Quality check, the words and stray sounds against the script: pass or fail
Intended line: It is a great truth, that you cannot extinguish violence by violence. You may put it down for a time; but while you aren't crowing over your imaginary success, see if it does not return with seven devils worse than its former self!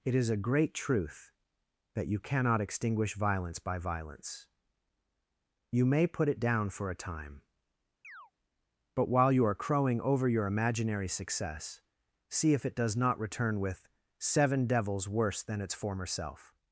fail